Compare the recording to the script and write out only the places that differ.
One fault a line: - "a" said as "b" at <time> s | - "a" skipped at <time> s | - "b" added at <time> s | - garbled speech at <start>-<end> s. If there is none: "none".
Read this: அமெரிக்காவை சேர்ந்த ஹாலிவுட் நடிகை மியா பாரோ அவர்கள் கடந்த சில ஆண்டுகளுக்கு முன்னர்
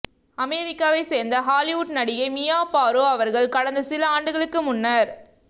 none